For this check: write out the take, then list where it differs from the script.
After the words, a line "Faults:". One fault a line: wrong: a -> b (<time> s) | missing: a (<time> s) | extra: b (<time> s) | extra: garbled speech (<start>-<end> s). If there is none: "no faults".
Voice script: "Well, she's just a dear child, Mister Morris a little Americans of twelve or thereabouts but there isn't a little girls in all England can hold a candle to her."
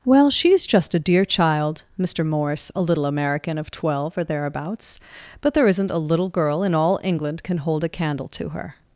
"Well, she's just a dear child, Mister Morris a little American of twelve or thereabouts but there isn't a little girl in all England can hold a candle to her."
Faults:
wrong: Americans -> American (3.0 s)
wrong: girls -> girl (6.3 s)